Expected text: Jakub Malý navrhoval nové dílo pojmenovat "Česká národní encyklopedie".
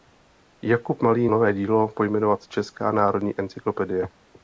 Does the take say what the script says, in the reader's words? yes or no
no